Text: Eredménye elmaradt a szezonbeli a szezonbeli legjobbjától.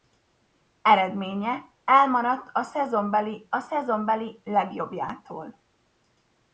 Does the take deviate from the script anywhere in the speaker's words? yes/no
no